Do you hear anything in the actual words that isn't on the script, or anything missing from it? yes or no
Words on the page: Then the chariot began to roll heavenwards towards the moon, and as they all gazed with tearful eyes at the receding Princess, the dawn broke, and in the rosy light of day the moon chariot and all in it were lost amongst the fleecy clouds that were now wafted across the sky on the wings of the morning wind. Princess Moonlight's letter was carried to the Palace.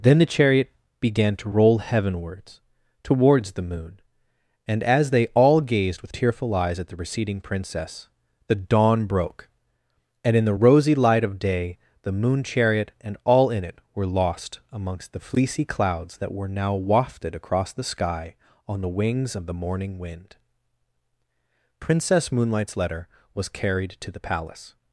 no